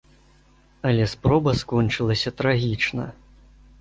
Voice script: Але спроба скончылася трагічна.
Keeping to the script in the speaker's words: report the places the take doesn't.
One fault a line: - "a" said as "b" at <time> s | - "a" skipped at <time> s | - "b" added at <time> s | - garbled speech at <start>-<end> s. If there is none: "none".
none